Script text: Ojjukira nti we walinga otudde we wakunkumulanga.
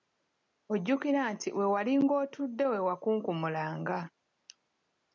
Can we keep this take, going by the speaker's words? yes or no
yes